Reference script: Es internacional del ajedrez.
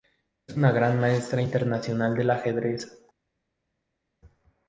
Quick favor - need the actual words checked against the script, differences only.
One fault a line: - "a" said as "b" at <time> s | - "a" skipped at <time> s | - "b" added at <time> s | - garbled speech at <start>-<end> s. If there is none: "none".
- "una gran maestra" added at 0.6 s